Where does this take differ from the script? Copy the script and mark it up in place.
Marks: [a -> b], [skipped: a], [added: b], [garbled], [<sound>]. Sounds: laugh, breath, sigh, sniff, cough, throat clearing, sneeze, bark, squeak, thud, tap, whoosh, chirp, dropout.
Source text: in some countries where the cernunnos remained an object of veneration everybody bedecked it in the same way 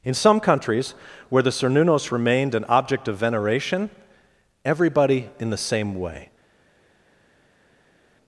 in some countries where the cernunnos remained an object of veneration everybody [skipped: bedecked it] in the same way